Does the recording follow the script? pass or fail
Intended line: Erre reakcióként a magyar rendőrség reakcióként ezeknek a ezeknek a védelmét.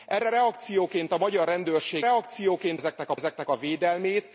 pass